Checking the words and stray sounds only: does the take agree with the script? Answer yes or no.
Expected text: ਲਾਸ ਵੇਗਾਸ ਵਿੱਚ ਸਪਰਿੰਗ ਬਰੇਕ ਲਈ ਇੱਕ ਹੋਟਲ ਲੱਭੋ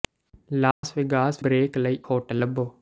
no